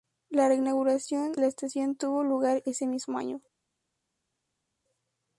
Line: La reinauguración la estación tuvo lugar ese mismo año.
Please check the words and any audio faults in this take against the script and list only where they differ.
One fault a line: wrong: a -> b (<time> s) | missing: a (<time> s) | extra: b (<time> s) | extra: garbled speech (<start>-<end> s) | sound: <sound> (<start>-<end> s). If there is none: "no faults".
no faults